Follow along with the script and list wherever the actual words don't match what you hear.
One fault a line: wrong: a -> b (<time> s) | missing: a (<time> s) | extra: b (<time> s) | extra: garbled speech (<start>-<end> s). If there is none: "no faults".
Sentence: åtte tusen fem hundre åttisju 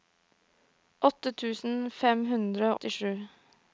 no faults